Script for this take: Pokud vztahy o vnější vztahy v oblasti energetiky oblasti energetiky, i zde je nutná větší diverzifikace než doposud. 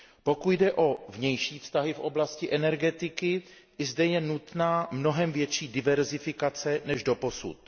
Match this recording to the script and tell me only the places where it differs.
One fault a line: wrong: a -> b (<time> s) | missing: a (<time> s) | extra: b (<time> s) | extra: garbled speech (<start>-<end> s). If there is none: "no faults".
wrong: vztahy -> jde (0.5 s)
missing: oblasti energetiky (3.4 s)
extra: mnohem (4.9 s)